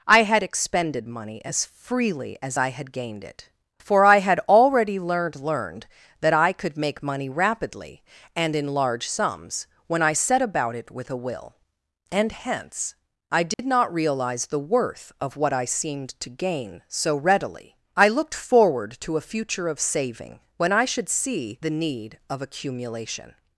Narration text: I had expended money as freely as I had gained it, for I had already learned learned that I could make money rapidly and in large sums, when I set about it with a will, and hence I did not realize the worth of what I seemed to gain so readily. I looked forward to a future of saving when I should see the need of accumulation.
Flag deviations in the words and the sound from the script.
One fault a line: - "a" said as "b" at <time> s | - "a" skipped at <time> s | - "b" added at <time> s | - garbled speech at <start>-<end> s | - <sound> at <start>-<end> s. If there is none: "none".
- dropout at 13.5-13.6 s